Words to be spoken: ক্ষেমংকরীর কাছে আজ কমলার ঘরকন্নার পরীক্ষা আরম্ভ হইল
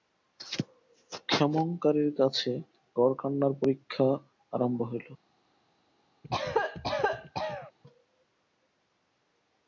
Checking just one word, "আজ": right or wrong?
wrong